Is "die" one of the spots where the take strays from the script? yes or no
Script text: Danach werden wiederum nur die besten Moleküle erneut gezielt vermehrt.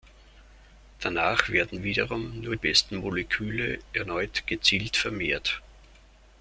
yes